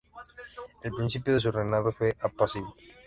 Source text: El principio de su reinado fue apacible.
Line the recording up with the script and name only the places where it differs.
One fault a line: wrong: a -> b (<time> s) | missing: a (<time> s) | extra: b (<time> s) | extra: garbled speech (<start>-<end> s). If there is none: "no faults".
no faults